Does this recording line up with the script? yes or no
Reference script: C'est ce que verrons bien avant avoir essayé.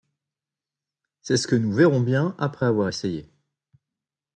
no